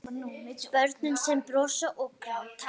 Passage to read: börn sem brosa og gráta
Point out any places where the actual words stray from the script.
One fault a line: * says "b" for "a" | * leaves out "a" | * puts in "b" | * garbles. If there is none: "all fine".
all fine